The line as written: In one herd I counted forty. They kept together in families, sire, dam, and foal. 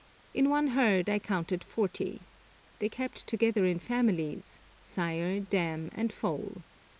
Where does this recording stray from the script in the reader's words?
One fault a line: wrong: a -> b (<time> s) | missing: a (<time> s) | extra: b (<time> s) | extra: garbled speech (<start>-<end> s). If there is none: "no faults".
no faults